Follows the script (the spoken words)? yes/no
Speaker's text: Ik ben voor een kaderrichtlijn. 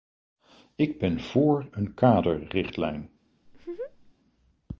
yes